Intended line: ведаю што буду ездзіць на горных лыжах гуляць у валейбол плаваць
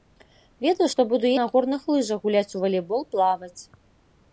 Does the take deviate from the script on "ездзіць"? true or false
true